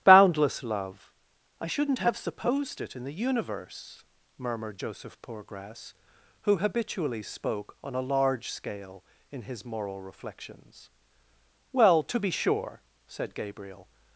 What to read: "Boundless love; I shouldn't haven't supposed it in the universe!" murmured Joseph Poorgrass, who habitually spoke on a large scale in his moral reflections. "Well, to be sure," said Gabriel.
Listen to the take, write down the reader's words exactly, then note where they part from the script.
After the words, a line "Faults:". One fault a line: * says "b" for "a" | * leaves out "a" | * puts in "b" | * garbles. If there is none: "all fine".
"Boundless love; I shouldn't have supposed it in the universe!" murmured Joseph Poorgrass, who habitually spoke on a large scale in his moral reflections. "Well, to be sure," said Gabriel.
Faults:
* says "have" for "haven't"